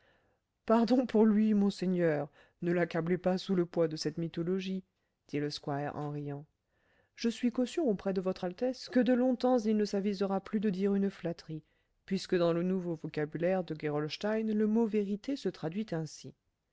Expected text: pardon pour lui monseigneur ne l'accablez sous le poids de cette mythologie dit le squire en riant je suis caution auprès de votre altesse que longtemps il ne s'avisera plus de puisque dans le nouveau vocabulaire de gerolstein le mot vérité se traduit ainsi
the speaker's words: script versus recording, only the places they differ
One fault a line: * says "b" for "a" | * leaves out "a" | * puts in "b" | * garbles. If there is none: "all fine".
* puts in "pas"
* puts in "de"
* puts in "dire une flatterie"